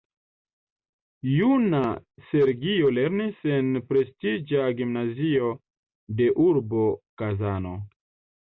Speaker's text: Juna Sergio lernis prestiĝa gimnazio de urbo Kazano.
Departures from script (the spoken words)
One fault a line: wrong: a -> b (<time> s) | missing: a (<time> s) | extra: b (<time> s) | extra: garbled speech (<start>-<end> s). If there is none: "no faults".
extra: en (3.6 s)